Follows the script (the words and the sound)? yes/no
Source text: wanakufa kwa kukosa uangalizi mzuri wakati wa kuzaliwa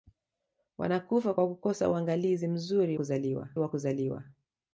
no